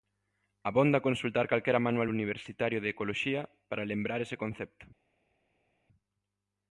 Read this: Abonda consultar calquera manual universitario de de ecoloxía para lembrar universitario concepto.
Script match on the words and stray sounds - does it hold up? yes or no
no